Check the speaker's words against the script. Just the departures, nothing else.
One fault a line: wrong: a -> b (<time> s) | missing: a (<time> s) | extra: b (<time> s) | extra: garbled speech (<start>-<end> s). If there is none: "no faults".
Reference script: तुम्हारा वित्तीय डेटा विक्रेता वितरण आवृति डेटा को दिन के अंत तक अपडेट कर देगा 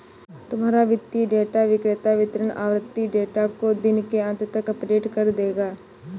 no faults